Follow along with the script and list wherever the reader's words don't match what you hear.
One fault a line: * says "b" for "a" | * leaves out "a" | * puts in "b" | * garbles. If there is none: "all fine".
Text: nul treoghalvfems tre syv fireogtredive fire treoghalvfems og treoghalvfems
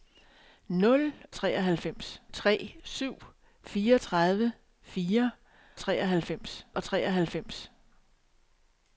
all fine